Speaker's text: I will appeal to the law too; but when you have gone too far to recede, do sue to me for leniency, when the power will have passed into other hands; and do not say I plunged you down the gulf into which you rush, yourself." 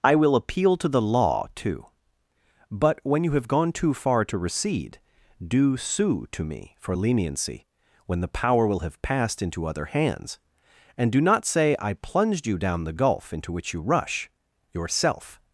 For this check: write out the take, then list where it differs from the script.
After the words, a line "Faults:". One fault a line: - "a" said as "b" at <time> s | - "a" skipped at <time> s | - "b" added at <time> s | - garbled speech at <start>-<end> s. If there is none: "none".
I will appeal to the law too; but when you have gone too far to recede, do sue to me for leniency, when the power will have passed into other hands; and do not say I plunged you down the gulf into which you rush, yourself."
Faults:
none